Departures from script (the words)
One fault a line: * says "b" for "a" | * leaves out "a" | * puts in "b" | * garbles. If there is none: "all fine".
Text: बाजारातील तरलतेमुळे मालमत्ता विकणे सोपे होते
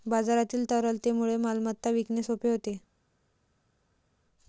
all fine